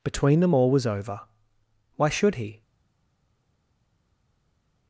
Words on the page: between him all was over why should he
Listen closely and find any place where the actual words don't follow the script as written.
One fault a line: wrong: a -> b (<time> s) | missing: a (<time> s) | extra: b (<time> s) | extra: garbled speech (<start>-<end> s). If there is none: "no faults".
wrong: him -> them (0.4 s)